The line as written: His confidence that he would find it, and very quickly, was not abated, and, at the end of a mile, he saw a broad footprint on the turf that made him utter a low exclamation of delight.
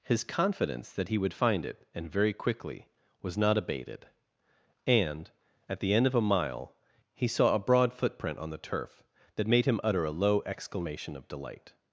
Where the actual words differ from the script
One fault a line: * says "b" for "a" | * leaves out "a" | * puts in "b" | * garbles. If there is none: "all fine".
all fine